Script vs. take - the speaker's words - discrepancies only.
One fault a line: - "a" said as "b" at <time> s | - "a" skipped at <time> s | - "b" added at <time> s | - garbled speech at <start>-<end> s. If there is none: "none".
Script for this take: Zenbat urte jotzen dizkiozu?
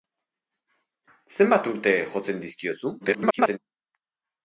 - garbled speech at 3.0-3.6 s